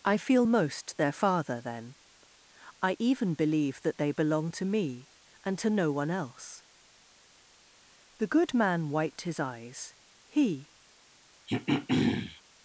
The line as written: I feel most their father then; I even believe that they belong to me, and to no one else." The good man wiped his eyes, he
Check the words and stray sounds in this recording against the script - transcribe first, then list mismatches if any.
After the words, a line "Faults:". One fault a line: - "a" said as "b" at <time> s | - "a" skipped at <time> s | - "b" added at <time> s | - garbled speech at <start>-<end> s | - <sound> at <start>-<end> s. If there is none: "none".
I feel most their father then; I even believe that they belong to me, and to no one else." The good man wiped his eyes, he
Faults:
- throat clearing at 11.5-12.4 s